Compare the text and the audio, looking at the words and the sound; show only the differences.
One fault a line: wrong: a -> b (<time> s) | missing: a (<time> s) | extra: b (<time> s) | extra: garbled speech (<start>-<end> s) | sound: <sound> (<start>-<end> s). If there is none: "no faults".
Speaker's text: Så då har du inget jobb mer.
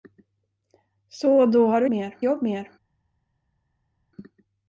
wrong: inget -> mer (1.9 s)